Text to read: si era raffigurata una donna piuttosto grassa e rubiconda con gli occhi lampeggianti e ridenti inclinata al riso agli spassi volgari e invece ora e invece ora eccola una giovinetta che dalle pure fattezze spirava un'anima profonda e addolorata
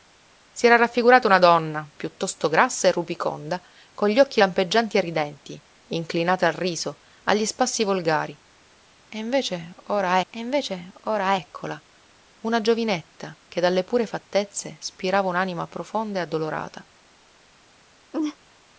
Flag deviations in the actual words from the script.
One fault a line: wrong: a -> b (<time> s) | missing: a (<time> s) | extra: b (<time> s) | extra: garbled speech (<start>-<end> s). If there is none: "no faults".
no faults